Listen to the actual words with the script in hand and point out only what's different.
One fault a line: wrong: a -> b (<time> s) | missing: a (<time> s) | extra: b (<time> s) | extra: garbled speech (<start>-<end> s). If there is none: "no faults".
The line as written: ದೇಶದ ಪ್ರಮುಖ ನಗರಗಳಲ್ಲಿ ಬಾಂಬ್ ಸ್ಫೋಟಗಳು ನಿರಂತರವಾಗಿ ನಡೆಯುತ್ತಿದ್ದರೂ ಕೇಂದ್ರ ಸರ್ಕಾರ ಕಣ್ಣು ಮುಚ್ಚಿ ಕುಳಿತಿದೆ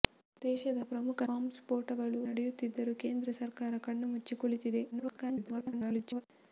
missing: ನಗರಗಳಲ್ಲಿ (1.2 s)
missing: ನಿರಂತರವಾಗಿ (2.2 s)
extra: garbled speech (4.9-6.2 s)